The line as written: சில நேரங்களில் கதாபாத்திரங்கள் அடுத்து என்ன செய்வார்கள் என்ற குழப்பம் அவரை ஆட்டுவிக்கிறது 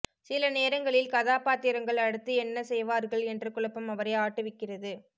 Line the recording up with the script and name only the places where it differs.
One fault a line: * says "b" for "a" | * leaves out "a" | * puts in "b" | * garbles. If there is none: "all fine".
all fine